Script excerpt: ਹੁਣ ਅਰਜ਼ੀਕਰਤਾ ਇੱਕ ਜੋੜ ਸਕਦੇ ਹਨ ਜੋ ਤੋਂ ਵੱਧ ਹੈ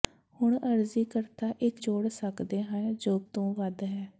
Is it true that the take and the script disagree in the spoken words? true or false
false